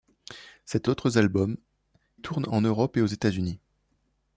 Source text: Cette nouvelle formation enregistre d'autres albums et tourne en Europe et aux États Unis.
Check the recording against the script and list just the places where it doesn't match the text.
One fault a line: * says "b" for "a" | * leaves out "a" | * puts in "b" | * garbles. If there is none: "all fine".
* leaves out "nouvelle formation enregistre"
* leaves out "et"